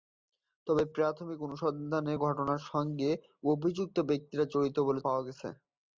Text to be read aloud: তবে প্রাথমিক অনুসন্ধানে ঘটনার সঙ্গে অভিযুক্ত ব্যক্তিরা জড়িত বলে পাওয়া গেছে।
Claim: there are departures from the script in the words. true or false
false